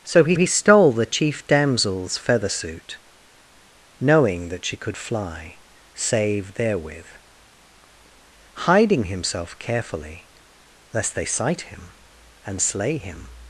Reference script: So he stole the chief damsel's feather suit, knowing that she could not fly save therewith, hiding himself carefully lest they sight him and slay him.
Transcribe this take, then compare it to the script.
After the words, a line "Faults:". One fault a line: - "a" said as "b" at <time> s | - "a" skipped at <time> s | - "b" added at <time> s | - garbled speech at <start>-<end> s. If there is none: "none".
So he he stole the chief damsel's feather suit, knowing that she could fly save therewith, hiding himself carefully lest they sight him and slay him.
Faults:
- "he" added at 0.3 s
- "not" skipped at 5.0 s